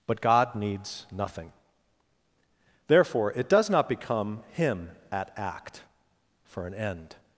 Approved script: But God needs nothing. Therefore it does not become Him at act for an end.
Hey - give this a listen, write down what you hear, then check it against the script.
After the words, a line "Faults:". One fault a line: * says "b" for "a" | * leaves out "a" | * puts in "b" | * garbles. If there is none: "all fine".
But God needs nothing. Therefore it does not become Him at act for an end.
Faults:
all fine